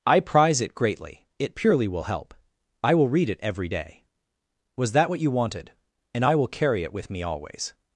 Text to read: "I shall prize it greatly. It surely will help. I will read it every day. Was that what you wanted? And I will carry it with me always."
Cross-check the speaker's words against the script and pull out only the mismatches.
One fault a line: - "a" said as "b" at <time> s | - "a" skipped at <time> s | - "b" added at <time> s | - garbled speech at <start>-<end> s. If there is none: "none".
- "shall" skipped at 0.2 s
- "surely" said as "purely" at 1.6 s